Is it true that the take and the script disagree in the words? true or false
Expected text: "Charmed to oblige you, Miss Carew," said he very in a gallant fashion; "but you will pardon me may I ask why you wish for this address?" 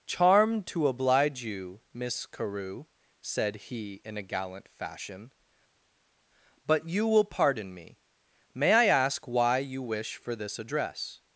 true